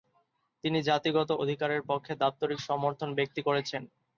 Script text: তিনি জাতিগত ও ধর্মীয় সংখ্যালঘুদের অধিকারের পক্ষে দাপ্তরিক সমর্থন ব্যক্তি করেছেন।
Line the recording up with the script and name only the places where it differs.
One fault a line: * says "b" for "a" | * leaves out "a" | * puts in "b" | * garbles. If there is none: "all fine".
* leaves out "ও ধর্মীয় সংখ্যালঘুদের"